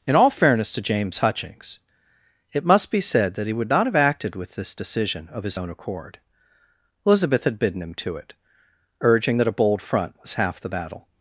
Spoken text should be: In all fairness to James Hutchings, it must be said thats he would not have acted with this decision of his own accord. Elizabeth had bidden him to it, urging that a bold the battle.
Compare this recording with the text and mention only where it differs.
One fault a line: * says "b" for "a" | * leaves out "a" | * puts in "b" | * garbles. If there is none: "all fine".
* says "that" for "thats"
* puts in "front was half"